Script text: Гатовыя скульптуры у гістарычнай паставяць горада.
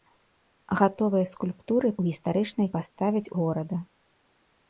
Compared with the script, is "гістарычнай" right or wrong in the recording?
right